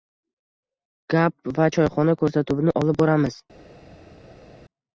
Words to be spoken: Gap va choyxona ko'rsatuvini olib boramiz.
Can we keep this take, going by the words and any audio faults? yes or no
yes